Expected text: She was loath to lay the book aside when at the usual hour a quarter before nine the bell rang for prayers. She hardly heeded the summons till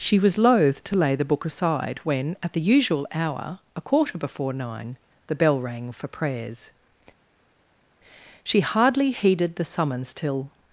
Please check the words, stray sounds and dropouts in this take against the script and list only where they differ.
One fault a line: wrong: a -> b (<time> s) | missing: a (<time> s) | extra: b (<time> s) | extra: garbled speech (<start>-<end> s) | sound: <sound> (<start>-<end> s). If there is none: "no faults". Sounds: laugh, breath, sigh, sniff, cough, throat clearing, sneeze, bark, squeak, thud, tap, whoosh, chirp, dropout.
no faults